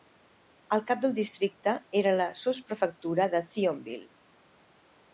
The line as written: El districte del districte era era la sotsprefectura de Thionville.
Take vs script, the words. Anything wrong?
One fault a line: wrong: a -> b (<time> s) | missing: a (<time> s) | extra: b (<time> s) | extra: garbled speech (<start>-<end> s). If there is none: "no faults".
wrong: districte -> cap (0.9 s)
missing: era (2.1 s)